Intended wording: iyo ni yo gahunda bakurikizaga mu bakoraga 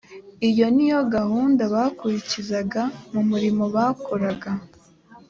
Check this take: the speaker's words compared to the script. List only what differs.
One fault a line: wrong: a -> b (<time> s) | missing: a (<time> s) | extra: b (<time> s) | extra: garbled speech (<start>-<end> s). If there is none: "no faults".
extra: murimo (3.3 s)